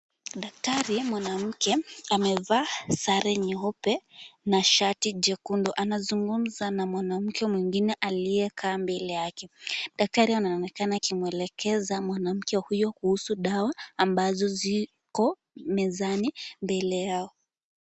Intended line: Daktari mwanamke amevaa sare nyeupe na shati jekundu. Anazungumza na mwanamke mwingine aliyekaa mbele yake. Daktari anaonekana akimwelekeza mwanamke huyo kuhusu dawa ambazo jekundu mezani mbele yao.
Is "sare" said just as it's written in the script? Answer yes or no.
yes